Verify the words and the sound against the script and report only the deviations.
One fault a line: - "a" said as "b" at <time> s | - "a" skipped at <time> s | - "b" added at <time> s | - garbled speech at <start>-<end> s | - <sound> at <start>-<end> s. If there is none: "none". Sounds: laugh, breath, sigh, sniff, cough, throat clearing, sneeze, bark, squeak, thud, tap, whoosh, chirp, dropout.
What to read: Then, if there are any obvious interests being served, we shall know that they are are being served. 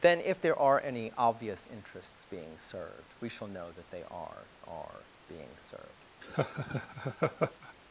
- laugh at 6.2-7.7 s